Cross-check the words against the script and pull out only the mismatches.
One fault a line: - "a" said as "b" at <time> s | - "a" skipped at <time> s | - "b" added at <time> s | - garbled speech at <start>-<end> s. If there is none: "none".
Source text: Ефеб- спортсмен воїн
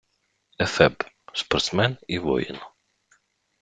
- "і" added at 2.1 s